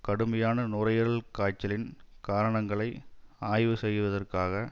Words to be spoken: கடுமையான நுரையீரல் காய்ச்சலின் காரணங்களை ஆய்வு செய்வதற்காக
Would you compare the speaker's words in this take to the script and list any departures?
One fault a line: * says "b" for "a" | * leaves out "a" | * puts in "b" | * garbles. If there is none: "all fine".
all fine